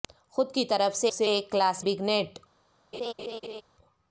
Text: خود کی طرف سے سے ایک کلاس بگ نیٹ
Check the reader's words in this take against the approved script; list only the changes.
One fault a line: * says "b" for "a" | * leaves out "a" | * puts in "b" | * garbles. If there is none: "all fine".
all fine